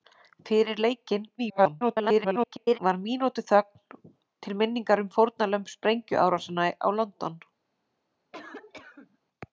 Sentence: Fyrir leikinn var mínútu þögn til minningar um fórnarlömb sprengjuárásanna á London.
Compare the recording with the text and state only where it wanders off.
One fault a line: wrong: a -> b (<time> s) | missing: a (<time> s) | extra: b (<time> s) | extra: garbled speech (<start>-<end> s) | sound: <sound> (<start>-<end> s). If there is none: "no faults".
extra: garbled speech (1.4-2.8 s)
sound: cough (8.3-9.2 s)